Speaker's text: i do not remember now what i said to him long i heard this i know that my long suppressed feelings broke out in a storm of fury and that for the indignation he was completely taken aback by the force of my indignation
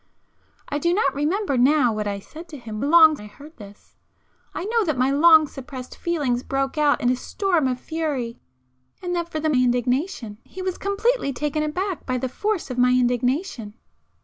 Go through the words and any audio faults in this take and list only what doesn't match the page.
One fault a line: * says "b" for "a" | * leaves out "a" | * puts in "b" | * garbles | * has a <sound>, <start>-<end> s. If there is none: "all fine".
all fine